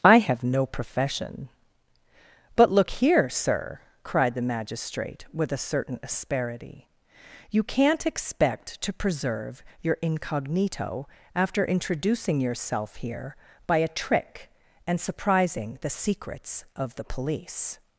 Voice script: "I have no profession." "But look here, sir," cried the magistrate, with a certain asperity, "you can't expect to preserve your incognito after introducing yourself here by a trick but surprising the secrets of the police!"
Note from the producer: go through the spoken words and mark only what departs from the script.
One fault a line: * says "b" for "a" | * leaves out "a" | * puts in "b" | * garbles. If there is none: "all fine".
* says "and" for "but"